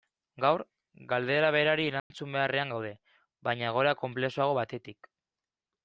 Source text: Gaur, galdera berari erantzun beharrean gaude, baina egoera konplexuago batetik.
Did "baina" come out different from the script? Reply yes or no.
no